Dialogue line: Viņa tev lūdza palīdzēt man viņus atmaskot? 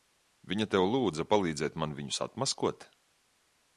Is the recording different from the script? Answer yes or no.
no